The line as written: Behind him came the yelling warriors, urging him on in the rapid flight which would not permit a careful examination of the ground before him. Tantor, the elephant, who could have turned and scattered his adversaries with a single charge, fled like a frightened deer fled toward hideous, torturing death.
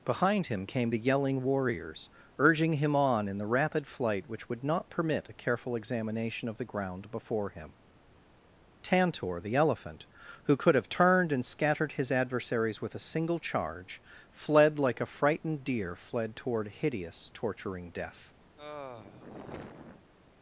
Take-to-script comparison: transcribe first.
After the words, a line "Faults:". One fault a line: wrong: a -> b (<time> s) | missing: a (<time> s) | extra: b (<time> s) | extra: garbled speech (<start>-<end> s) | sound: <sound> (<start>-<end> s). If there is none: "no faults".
Behind him came the yelling warriors, urging him on in the rapid flight which would not permit a careful examination of the ground before him. Tantor, the elephant, who could have turned and scattered his adversaries with a single charge, fled like a frightened deer fled toward hideous, torturing death.
Faults:
sound: sigh (18.6-20.1 s)